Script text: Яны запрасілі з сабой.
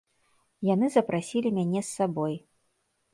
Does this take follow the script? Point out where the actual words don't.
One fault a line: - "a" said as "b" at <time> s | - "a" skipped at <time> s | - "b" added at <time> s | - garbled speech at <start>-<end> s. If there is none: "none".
- "мяне" added at 1.6 s